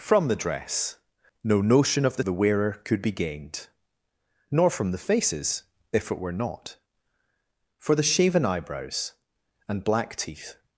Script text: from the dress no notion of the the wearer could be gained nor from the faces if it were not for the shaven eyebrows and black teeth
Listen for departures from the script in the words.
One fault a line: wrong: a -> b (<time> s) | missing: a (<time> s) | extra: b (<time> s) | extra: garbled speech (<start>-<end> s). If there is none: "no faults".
no faults